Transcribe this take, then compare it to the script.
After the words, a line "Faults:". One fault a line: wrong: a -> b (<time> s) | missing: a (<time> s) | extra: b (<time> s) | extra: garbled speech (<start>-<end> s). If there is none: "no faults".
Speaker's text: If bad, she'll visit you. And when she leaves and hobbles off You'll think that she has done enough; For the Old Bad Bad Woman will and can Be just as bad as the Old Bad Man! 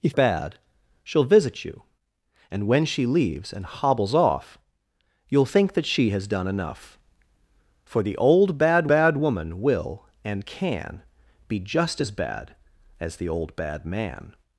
If bad, she'll visit you. And when she leaves and hobbles off You'll think that she has done enough; For the Old Bad Bad Woman will and can Be just as bad as the Old Bad Man!
Faults:
no faults